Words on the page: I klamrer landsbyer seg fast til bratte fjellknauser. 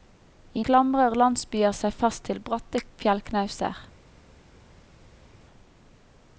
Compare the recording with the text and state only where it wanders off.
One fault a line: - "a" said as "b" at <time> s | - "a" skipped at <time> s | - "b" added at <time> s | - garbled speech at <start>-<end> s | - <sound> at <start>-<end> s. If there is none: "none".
none